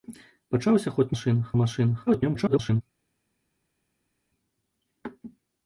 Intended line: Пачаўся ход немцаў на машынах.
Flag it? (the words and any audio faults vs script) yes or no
yes